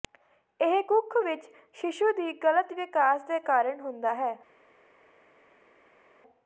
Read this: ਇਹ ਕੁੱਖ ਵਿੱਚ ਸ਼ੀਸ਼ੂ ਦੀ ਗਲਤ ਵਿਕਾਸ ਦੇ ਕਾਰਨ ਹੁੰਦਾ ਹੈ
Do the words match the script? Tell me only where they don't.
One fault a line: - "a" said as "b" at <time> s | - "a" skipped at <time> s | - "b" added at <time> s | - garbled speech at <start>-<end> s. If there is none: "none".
none